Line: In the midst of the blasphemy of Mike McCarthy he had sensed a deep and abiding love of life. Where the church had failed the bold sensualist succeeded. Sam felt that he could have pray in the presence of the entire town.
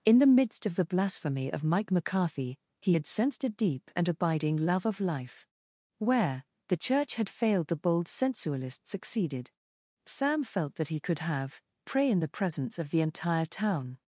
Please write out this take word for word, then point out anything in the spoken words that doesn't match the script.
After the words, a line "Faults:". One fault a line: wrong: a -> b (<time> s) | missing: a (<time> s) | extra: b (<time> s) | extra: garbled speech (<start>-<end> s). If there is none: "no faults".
In the midst of the blasphemy of Mike McCarthy he had sensed a deep and abiding love of life. Where the church had failed the bold sensualist succeeded. Sam felt that he could have pray in the presence of the entire town.
Faults:
no faults